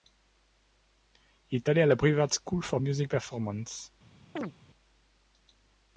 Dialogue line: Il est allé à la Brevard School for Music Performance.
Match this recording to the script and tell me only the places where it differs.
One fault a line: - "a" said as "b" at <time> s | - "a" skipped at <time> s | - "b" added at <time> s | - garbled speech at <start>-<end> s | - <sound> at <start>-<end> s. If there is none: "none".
- chirp at 4.4-4.5 s